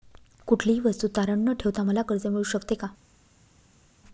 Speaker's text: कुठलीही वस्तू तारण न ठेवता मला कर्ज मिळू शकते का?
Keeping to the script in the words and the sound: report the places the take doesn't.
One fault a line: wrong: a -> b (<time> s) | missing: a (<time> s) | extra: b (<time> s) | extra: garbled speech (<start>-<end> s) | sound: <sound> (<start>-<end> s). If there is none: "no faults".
no faults